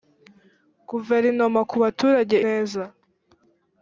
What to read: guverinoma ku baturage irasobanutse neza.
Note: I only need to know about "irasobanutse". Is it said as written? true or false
false